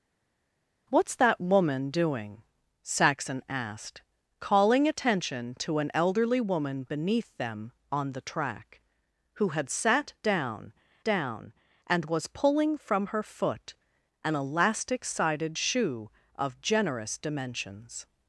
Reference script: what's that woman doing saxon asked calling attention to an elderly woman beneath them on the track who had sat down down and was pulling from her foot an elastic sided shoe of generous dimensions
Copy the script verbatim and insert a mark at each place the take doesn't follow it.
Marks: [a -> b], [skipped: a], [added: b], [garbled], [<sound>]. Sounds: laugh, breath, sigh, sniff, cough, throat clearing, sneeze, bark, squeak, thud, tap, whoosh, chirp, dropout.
what's that woman doing saxon asked calling attention to an elderly woman beneath them on the track who had sat down down and was pulling from her foot an elastic sided shoe of generous dimensions